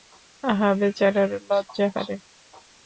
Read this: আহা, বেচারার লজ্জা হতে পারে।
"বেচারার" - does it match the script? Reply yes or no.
yes